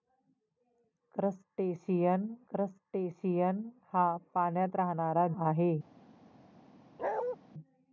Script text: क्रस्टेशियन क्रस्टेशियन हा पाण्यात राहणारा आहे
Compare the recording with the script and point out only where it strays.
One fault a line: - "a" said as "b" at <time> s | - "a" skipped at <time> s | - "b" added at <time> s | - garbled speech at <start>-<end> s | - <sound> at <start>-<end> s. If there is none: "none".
- bark at 7.0-7.4 s